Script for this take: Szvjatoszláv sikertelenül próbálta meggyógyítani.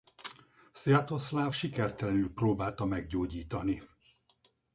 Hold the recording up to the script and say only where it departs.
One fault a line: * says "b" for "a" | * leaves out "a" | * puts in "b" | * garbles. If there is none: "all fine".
all fine